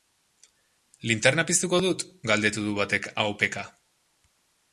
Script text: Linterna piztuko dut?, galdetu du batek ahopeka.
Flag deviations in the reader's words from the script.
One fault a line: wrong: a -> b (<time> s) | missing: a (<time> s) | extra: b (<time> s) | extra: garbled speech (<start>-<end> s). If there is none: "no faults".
no faults